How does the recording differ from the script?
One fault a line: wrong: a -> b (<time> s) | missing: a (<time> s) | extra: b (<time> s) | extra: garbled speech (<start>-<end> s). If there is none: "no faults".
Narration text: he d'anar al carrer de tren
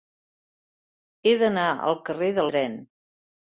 no faults